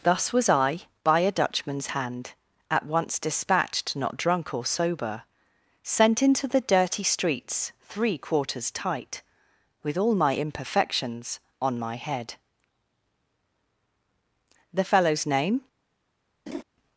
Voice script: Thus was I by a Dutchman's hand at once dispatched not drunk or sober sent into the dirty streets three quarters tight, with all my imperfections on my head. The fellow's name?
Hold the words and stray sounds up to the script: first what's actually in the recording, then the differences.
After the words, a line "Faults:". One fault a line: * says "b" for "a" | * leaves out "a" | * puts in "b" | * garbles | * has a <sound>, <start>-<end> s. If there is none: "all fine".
Thus was I by a Dutchman's hand at once dispatched not drunk or sober sent into the dirty streets three quarters tight, with all my imperfections on my head. The fellow's name?
Faults:
* has a laugh, 16.5-16.6 s